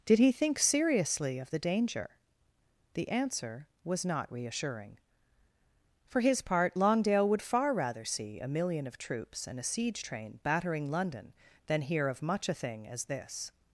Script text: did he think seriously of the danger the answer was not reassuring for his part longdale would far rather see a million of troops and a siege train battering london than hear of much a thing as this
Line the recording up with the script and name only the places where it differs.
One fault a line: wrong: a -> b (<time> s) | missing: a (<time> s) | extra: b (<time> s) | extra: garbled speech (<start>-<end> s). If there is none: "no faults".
no faults